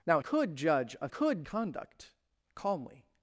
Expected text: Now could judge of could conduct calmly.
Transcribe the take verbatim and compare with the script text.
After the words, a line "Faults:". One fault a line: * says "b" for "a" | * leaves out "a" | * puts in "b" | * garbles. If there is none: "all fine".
Now could judge of could conduct calmly.
Faults:
all fine